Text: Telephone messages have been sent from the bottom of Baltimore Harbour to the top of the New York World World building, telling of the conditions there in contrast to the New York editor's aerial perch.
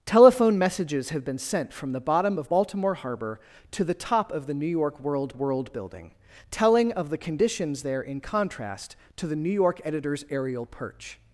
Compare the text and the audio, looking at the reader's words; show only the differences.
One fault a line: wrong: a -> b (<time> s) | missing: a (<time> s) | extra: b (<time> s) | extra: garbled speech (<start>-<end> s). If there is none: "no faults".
no faults